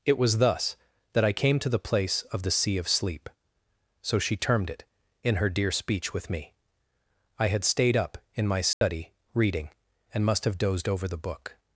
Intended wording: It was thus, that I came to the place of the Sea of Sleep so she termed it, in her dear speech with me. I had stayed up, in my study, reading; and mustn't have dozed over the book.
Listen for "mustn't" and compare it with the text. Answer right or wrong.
wrong